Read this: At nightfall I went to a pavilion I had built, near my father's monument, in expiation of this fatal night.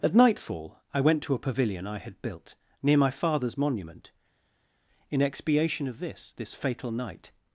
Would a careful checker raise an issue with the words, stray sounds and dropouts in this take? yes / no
yes